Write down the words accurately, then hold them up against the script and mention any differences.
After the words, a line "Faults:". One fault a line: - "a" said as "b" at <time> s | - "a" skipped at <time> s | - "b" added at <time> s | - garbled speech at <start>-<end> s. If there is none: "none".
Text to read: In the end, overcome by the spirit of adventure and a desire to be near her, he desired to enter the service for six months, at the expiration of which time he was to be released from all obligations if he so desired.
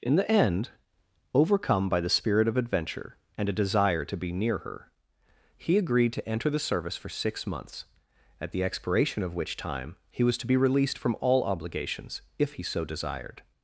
In the end, overcome by the spirit of adventure and a desire to be near her, he agreed to enter the service for six months, at the expiration of which time he was to be released from all obligations if he so desired.
Faults:
- "desired" said as "agreed" at 5.8 s